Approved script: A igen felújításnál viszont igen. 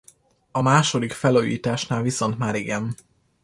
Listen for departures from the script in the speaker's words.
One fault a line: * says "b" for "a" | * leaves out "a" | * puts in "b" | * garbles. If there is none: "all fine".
* says "második" for "igen"
* puts in "már"